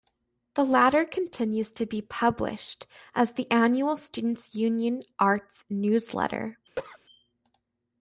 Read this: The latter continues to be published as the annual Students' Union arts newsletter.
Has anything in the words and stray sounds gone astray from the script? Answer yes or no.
yes